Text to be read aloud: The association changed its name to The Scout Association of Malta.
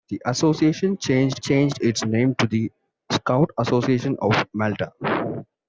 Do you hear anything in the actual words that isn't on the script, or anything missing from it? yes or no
yes